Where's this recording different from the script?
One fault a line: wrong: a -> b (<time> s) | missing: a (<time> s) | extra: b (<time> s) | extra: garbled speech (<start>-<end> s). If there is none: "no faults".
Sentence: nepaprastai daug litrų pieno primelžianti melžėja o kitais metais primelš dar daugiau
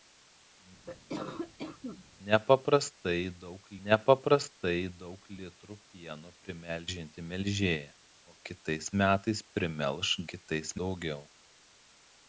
extra: nepaprastai daug (3.9 s)
wrong: dar -> kitais (10.3 s)